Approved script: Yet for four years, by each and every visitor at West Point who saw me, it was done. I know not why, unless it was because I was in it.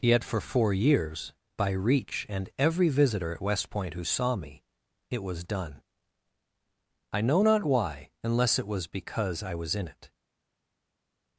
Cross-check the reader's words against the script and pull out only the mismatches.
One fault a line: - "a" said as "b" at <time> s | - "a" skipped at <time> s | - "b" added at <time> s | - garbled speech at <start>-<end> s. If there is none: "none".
- "each" said as "reach" at 1.7 s